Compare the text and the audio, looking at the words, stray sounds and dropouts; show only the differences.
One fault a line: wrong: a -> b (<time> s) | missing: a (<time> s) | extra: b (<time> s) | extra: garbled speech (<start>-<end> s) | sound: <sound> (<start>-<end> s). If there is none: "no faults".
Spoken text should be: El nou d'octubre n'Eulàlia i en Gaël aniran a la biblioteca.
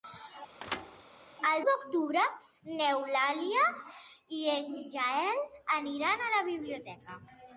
sound: thud (0.6-1.0 s)
missing: nou (1.6 s)